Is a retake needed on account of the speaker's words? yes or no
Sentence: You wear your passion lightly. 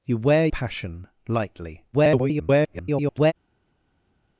yes